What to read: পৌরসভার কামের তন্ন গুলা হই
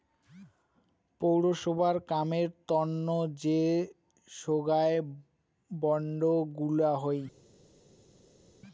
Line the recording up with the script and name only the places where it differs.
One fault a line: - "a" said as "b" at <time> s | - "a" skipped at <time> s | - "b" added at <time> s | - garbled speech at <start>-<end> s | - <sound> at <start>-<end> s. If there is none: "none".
- "যে সোগায় বন্ড" added at 3.4 s